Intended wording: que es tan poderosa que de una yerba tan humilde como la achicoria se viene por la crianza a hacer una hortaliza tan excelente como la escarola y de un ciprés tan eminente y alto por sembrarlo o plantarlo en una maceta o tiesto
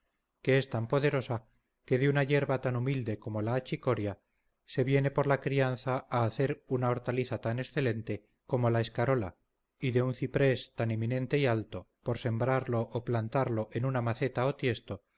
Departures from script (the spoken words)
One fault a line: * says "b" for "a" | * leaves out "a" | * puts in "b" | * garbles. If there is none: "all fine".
all fine